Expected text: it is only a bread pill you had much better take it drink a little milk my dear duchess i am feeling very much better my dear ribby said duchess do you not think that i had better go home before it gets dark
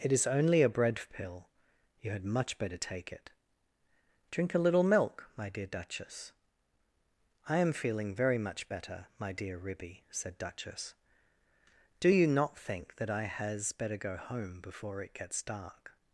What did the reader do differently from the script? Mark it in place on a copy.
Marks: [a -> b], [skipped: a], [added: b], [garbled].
it is only a bread pill you had much better take it drink a little milk my dear duchess i am feeling very much better my dear ribby said duchess do you not think that i [had -> has] better go home before it gets dark